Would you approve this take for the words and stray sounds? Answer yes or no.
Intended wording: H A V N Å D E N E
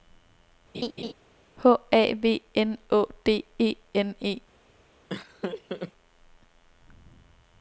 no